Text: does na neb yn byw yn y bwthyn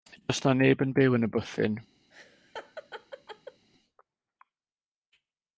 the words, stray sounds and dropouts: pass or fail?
fail